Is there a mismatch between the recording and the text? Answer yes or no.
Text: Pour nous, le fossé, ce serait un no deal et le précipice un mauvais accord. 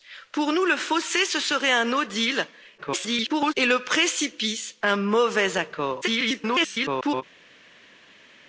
yes